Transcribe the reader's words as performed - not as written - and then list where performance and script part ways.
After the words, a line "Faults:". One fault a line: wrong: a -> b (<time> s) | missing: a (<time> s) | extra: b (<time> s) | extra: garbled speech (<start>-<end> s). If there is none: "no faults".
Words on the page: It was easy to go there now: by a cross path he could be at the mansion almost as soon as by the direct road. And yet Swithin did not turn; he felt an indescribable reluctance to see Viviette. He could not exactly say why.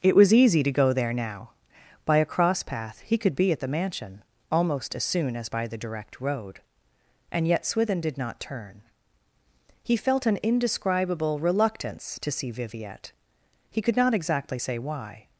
It was easy to go there now: by a cross path he could be at the mansion almost as soon as by the direct road. And yet Swithin did not turn; he felt an indescribable reluctance to see Viviette. He could not exactly say why.
Faults:
no faults